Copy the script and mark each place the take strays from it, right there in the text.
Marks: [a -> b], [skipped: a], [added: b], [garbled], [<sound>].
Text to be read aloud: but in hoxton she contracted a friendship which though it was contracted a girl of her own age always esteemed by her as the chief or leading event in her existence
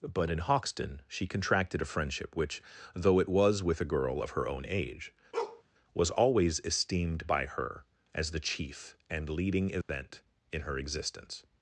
but in hoxton she contracted a friendship which though it was [contracted -> with] a girl of her own age [bark] [added: was] always esteemed by her as the chief [or -> and] leading event [dropout] in her existence